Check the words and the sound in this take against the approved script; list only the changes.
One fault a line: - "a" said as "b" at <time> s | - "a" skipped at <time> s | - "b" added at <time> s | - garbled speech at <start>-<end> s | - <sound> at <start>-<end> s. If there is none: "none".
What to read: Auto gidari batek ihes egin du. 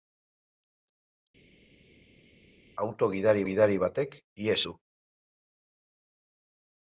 - "gidari" added at 3.5 s
- "egin" skipped at 4.6 s